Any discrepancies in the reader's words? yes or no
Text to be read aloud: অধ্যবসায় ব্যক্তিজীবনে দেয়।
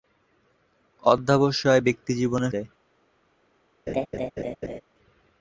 no